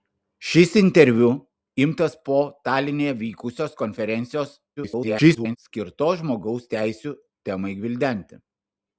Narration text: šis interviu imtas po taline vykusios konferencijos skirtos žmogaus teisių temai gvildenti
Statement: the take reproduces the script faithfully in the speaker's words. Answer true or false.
false